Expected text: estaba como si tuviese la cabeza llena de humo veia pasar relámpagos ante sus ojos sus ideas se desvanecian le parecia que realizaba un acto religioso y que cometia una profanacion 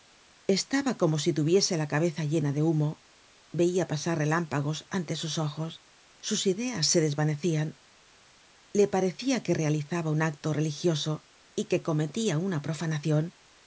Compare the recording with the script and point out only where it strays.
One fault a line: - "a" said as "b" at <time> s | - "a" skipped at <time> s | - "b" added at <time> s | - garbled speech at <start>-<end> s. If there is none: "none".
none